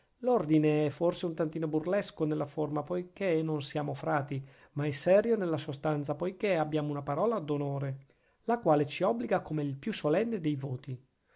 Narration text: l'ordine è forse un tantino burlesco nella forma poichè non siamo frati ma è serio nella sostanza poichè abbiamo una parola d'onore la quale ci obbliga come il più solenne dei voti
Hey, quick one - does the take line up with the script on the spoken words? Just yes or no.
yes